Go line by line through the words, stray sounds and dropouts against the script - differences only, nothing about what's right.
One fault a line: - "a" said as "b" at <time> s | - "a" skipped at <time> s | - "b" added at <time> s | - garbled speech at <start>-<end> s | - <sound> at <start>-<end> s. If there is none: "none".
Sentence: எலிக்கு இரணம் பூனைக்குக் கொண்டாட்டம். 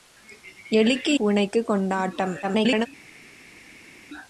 - "இரணம்" skipped at 1.1 s
- garbled speech at 2.4-2.9 s